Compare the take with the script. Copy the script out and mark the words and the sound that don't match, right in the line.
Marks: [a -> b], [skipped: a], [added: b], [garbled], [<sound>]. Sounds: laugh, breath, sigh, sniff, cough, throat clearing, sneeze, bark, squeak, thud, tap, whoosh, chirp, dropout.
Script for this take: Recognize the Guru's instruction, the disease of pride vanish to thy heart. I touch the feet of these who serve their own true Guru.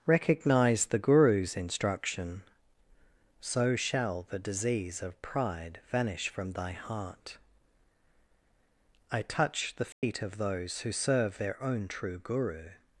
Recognize the Guru's instruction, [added: so shall] the disease of pride vanish [to -> from] thy heart. I touch the feet [dropout] of [these -> those] who serve their own true Guru.